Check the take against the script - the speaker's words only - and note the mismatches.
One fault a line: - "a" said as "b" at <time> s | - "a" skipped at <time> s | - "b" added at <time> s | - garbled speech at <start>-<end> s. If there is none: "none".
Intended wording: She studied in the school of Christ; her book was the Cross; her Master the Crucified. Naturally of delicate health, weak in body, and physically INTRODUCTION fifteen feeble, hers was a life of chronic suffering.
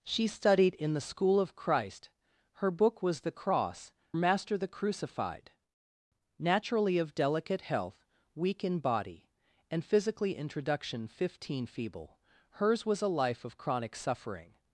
- "her" skipped at 3.9 s